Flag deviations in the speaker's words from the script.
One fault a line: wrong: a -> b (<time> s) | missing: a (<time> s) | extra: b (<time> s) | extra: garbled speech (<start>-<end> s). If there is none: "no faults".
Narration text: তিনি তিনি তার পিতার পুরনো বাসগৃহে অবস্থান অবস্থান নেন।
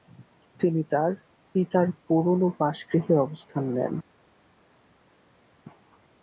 missing: তিনি (0.8 s)
missing: অবস্থান (3.6 s)